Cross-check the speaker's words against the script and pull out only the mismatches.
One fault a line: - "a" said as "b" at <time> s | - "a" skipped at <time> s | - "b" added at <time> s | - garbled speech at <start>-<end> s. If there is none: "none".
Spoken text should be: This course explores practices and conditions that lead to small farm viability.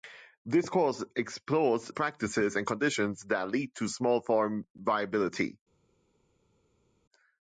none